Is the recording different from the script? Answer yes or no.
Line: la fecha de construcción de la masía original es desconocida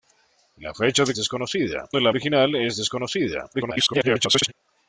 yes